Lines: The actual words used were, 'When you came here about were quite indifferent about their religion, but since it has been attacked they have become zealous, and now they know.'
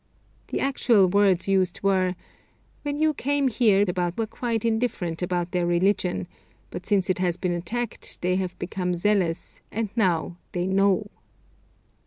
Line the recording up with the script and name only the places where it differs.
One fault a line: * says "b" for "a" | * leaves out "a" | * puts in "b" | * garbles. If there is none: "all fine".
all fine